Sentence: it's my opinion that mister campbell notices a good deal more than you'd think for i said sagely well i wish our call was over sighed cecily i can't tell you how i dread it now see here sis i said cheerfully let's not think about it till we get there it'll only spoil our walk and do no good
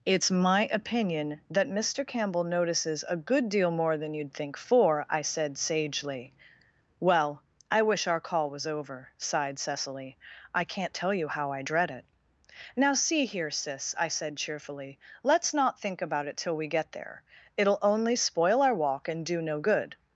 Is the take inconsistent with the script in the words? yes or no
no